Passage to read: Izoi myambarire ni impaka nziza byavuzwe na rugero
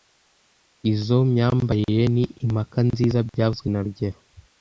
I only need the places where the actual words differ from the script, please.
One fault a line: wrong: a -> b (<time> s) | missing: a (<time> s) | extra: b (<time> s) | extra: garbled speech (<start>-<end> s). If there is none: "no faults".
no faults